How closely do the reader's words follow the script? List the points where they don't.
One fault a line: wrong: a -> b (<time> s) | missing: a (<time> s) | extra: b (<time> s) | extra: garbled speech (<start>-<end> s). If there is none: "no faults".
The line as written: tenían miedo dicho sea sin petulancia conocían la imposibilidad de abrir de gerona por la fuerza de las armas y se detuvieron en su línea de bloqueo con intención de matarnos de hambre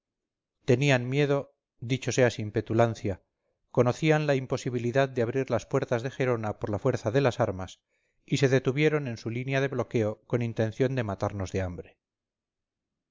extra: las puertas (5.5 s)